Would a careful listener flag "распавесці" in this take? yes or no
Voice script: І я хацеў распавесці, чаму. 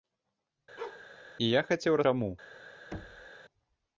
yes